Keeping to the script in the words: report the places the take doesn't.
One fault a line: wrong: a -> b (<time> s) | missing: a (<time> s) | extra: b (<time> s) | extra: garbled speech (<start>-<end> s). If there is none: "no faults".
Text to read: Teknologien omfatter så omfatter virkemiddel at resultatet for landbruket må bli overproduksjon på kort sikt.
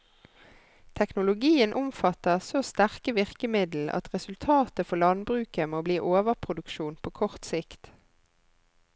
wrong: omfatter -> sterke (2.7 s)